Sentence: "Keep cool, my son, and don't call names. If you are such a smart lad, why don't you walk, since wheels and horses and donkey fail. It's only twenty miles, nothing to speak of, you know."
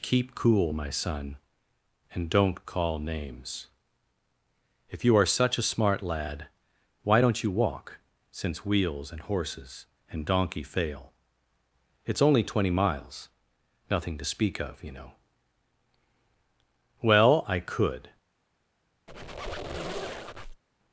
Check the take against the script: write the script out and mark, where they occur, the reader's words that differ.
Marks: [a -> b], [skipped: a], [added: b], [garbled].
"Keep cool, my son, and don't call names. If you are such a smart lad, why don't you walk, since wheels and horses and donkey fail. It's only twenty miles, nothing to speak of, you know." [added: Well I could]